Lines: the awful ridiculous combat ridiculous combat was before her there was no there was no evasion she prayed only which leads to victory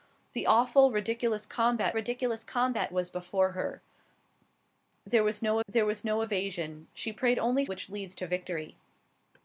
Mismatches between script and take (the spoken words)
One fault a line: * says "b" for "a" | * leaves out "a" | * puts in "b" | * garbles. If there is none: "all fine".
all fine